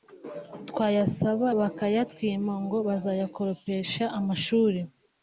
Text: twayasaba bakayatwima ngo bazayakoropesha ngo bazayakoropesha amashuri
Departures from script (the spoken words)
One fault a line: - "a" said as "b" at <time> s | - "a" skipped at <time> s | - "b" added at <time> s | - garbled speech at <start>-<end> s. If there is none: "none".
- "ngo bazayakoropesha" skipped at 4.0 s